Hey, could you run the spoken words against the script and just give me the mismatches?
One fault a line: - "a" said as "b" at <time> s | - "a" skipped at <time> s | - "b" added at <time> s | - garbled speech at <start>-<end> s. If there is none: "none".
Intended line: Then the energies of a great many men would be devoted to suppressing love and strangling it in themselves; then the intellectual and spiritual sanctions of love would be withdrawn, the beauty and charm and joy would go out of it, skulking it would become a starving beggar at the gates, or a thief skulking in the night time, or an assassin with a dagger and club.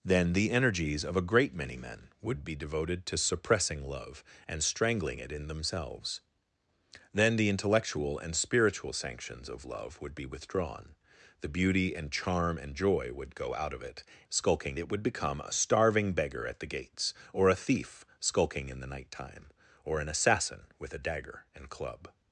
none